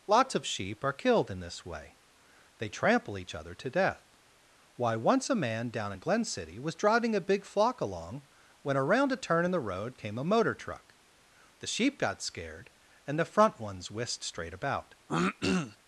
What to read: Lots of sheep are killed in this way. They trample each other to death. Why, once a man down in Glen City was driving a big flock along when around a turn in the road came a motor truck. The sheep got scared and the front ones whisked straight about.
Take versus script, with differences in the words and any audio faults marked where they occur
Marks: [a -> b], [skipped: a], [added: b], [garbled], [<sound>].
Lots of sheep are killed in this way. They trample each other to death. Why, once a man down in Glen City was driving a big flock along when around a turn in the road came a motor truck. The sheep got scared and the front ones whisked straight about. [throat clearing]